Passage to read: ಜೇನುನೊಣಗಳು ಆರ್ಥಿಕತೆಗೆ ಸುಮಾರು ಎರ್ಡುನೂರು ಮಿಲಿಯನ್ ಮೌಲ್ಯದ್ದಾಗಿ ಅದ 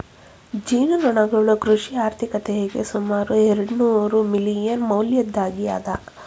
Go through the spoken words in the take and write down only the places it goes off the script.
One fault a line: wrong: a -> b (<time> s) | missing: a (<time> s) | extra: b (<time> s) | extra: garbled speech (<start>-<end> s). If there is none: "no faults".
extra: ಕೃಷಿ (1.6 s)